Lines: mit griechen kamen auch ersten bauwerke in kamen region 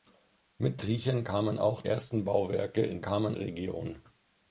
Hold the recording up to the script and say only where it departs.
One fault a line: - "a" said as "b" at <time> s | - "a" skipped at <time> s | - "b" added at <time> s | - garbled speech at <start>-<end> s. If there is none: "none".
none